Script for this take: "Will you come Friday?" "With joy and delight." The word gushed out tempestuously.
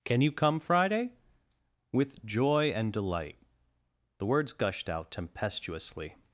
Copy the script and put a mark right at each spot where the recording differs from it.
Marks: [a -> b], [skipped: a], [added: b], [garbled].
["Will -> Can] you come Friday?" "With joy and delight." The [word -> words] gushed out tempestuously.